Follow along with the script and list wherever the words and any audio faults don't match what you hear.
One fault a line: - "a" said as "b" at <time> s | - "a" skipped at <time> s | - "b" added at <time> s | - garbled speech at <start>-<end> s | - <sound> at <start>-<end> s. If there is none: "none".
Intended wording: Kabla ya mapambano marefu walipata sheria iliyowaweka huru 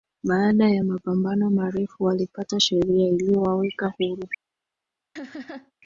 - "Kabla" said as "Baada" at 0.2 s
- laugh at 5.2-5.7 s